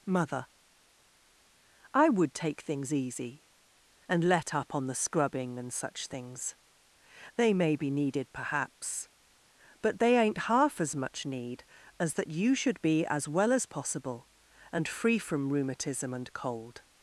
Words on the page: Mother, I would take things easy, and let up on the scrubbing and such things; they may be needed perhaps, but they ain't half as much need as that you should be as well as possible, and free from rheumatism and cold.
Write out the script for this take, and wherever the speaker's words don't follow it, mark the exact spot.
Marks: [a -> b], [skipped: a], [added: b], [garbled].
Mother, I would take things easy, and let up on the scrubbing and such things; they may be needed perhaps, but they ain't half as much need as that you should be as well as possible, and free from rheumatism and cold.